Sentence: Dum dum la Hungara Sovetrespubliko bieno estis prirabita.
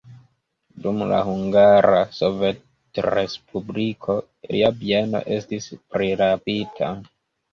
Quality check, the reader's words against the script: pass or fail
fail